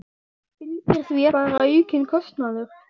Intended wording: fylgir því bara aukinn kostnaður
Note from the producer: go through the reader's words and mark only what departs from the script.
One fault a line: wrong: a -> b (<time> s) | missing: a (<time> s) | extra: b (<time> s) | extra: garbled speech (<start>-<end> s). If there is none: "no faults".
no faults